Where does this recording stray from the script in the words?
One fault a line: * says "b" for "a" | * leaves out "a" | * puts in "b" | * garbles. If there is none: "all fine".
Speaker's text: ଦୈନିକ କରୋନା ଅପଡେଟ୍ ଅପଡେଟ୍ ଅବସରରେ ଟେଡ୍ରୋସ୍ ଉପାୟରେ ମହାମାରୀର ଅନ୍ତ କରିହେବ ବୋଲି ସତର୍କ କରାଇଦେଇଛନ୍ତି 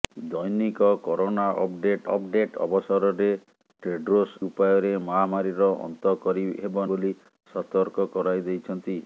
all fine